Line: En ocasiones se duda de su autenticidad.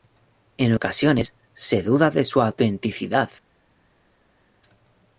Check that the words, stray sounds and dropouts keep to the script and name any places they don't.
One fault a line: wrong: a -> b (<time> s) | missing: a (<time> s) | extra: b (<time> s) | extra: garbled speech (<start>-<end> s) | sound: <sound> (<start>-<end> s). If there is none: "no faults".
no faults